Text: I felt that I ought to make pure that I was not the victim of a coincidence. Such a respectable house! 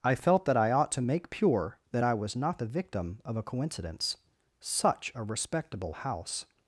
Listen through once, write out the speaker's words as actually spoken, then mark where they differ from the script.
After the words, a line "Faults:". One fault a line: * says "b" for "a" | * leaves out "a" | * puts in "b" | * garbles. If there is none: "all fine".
I felt that I ought to make pure that I was not the victim of a coincidence. Such a respectable house!
Faults:
all fine